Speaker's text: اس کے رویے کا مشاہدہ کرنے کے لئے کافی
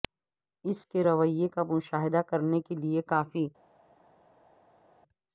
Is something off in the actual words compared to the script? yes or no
no